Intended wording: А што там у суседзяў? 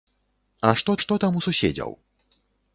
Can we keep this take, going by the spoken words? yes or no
no